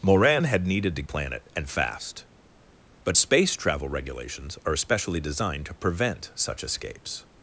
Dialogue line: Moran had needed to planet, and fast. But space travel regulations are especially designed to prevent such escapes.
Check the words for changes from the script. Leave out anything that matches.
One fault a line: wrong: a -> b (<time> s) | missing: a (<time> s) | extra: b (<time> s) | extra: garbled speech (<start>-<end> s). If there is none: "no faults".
no faults